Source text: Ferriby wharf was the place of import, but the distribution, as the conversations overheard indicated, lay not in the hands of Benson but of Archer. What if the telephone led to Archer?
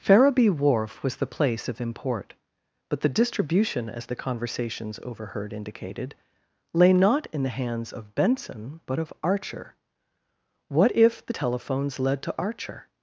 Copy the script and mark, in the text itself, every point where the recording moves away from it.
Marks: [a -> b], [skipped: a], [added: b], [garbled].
Ferriby wharf was the place of import, but the distribution, as the conversations overheard indicated, lay not in the hands of Benson but of Archer. What if the [telephone -> telephones] led to Archer?